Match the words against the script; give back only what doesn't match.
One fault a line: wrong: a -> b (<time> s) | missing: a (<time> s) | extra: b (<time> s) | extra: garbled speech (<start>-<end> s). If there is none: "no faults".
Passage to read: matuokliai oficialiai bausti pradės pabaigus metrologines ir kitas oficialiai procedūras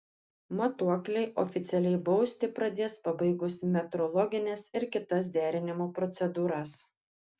wrong: oficialiai -> derinimo (5.4 s)